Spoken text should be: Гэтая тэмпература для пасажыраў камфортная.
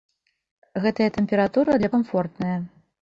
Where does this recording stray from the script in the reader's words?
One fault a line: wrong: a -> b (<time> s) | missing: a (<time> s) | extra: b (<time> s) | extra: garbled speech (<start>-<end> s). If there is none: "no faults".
missing: пасажыраў (1.9 s)